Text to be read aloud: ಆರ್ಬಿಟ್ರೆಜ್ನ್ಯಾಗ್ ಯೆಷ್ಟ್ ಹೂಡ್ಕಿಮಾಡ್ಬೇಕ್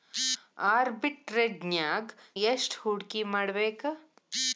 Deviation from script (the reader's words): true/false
false